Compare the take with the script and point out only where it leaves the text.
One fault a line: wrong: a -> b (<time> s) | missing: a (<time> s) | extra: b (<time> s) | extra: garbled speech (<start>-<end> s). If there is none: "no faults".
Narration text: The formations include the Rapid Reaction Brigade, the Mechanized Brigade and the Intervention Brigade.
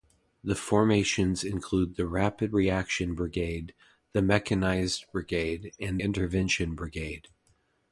missing: the (6.0 s)